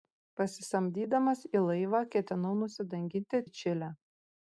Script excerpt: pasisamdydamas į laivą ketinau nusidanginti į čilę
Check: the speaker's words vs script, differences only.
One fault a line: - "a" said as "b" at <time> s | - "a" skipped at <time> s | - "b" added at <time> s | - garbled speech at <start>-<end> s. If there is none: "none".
none